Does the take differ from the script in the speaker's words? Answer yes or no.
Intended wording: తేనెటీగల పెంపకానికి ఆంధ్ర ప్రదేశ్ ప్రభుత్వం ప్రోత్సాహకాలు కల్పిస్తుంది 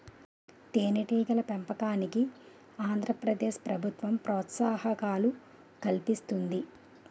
no